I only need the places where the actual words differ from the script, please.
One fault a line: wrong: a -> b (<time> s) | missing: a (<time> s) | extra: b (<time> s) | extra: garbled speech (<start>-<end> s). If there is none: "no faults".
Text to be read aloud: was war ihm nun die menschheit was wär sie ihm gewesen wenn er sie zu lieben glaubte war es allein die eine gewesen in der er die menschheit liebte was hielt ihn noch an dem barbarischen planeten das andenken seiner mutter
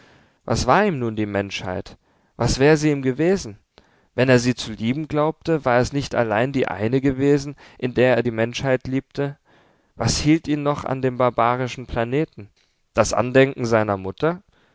extra: nicht (5.9 s)